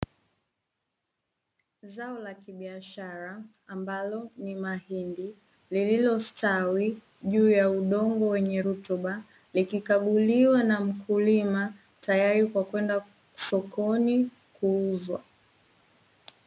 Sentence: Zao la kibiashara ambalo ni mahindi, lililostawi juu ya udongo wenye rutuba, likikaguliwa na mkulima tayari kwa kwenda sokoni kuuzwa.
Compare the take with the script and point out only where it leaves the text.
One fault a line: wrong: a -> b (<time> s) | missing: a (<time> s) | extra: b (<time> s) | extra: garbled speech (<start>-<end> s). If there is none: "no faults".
no faults